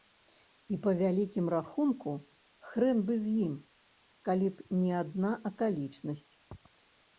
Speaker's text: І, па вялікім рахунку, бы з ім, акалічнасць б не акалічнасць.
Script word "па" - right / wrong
right